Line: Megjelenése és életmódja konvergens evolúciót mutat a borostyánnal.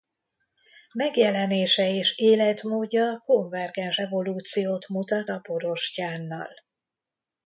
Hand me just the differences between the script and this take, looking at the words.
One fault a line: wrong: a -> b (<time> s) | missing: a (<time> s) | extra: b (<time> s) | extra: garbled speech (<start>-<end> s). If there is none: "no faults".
no faults